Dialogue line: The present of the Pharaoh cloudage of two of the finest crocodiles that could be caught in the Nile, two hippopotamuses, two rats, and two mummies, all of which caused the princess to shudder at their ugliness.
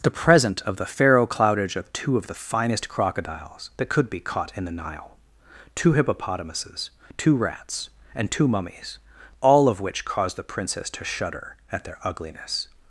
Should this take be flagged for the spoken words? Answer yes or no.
no